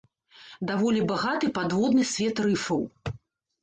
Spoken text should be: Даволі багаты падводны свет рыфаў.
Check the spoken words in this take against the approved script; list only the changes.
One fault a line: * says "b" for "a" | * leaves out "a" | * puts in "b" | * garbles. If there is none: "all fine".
all fine